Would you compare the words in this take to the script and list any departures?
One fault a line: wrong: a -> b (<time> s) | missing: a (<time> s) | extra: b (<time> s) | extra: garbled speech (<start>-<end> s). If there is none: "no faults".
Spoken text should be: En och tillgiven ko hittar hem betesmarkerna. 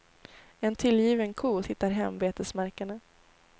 no faults